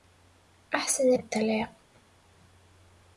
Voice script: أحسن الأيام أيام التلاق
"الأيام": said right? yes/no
no